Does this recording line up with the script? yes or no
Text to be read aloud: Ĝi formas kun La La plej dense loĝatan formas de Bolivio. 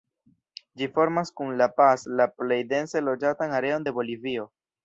no